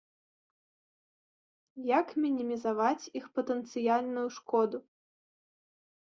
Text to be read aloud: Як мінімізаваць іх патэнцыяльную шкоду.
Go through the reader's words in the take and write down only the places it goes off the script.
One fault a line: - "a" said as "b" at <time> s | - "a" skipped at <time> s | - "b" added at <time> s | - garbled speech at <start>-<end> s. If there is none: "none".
none